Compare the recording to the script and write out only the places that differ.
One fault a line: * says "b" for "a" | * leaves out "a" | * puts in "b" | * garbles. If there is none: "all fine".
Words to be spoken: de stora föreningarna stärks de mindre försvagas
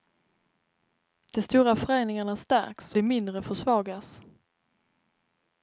all fine